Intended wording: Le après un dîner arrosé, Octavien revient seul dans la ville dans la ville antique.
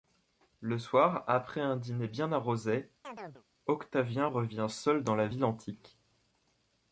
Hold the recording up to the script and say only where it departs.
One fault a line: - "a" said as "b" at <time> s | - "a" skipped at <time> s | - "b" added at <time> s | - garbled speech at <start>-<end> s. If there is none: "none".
- "soir" added at 0.8 s
- "bien" added at 2.1 s
- "dans la ville" skipped at 5.4 s